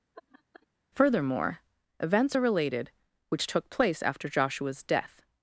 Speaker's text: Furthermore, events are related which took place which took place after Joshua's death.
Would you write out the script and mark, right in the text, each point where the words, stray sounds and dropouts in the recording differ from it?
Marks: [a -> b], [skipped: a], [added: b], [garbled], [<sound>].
[laugh] Furthermore, events are related which took place [skipped: which took place] after Joshua's death.